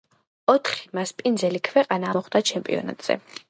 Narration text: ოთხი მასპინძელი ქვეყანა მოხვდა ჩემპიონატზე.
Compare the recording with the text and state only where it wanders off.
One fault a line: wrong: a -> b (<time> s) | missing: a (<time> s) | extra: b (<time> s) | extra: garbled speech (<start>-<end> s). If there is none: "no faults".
no faults